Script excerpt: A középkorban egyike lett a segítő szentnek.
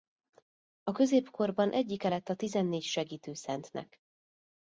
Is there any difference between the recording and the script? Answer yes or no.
yes